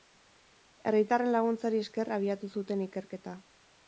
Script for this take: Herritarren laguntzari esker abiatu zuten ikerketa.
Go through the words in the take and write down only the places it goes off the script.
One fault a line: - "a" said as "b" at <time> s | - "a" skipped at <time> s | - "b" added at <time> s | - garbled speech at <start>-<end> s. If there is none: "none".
none